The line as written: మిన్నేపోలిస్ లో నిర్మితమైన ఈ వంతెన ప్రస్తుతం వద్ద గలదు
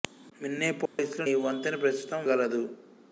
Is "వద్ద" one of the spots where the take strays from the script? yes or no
yes